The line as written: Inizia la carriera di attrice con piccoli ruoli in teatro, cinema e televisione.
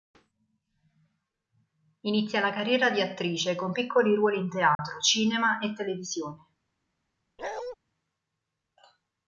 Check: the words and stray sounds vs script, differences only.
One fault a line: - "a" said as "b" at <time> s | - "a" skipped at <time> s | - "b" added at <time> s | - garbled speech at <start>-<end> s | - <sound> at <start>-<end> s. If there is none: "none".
- dropout at 4.7-4.8 s
- bark at 7.4-7.8 s